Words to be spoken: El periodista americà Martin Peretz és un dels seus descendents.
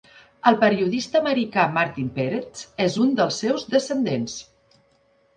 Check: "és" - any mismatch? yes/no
no